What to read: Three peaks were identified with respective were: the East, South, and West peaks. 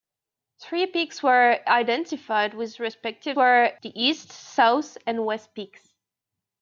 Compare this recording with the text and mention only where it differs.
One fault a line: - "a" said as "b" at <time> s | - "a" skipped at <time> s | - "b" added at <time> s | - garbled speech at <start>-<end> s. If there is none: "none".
none